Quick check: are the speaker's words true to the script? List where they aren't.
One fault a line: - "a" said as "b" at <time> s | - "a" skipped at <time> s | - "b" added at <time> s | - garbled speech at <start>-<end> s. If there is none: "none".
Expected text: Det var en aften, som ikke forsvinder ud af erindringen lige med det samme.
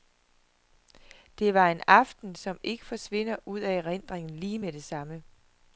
none